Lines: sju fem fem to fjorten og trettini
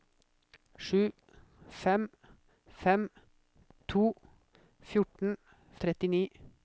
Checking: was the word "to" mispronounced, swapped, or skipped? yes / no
no